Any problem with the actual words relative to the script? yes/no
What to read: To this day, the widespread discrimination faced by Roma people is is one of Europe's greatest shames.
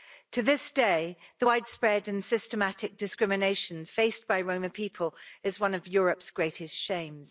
yes